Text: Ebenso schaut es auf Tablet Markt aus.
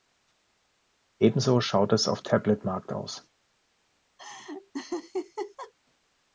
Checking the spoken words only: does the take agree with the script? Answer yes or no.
yes